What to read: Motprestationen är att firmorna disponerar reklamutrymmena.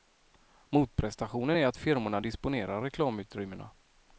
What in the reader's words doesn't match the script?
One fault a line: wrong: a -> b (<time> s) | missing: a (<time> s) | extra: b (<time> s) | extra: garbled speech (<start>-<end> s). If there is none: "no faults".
no faults